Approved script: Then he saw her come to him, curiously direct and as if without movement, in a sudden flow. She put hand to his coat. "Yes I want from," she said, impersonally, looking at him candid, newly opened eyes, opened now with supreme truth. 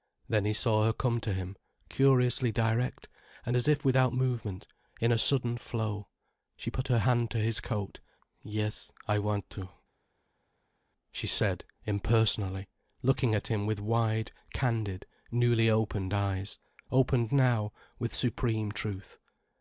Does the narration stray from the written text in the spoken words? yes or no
yes